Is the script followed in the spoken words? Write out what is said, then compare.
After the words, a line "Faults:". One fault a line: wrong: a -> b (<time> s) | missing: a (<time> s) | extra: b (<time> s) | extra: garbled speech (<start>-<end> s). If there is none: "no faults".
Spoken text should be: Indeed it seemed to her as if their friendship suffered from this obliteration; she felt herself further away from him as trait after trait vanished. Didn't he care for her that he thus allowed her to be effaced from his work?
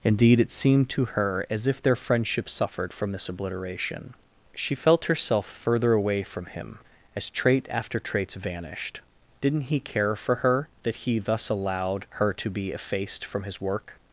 Indeed it seemed to her as if their friendship suffered from this obliteration; she felt herself further away from him as trait after traits vanished. Didn't he care for her that he thus allowed her to be effaced from his work?
Faults:
wrong: trait -> traits (8.0 s)